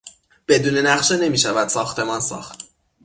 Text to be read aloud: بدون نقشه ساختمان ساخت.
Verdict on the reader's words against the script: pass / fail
fail